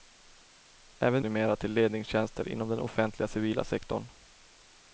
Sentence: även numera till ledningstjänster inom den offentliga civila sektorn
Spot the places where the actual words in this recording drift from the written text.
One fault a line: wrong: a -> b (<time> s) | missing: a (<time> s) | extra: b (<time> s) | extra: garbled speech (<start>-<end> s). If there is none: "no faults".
no faults